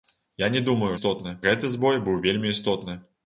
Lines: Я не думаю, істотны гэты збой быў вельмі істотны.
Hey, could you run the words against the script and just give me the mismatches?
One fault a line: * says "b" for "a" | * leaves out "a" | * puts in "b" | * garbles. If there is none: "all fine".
all fine